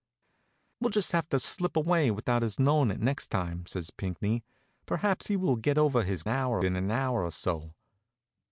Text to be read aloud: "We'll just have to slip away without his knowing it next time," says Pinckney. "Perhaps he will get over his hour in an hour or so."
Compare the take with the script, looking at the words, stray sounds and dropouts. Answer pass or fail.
pass